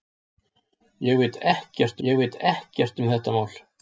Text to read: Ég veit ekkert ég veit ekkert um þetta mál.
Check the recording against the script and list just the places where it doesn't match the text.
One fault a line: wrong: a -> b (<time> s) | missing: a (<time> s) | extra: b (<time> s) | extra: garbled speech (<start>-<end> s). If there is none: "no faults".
no faults